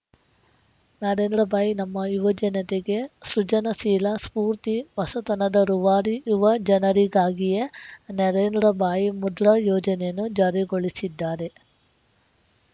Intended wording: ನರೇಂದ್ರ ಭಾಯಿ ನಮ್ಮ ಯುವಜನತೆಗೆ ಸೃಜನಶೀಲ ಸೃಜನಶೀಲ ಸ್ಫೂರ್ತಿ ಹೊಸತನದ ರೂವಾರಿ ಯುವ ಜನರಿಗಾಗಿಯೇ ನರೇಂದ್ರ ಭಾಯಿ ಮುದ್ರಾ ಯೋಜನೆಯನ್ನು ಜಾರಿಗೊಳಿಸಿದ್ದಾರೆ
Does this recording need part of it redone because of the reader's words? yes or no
yes